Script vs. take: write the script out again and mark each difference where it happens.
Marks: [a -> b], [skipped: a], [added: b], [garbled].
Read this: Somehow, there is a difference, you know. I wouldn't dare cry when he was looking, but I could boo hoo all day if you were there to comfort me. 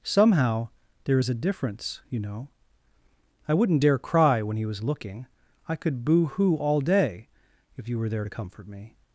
Somehow, there is a difference, you know. I wouldn't dare cry when he was looking, [skipped: but] I could boo hoo all day if you were there to comfort me.